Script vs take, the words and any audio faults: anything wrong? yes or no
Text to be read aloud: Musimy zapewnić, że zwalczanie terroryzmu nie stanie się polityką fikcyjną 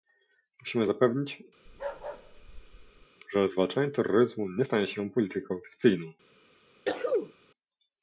yes